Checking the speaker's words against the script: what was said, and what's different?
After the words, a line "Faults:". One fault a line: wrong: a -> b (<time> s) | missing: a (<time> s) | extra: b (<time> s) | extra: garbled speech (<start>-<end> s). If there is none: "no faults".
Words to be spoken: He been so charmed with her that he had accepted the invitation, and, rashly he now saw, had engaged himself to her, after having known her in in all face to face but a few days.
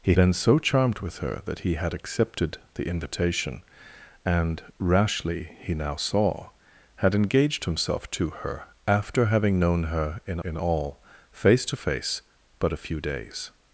He been so charmed with her that he had accepted the invitation, and, rashly he now saw, had engaged himself to her, after having known her in in all face to face but a few days.
Faults:
no faults